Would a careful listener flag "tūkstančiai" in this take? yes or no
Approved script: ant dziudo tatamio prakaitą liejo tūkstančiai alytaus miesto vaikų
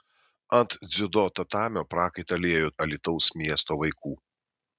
yes